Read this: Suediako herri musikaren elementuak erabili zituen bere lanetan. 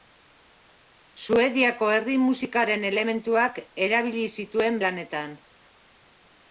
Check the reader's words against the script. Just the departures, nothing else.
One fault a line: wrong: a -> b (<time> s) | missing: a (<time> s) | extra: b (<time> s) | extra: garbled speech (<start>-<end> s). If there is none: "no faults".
missing: bere (4.8 s)